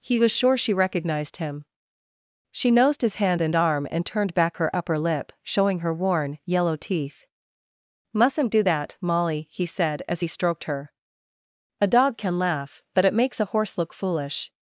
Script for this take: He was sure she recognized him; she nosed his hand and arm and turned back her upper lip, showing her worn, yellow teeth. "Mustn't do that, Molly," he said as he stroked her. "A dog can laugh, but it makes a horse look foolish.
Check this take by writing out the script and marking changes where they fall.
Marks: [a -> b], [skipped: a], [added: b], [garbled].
He was sure she recognized him; she nosed his hand and arm and turned back her upper lip, showing her worn, yellow teeth. "Mustn't do that, Molly," he said as he stroked her. "A dog can laugh, but it makes a horse look foolish.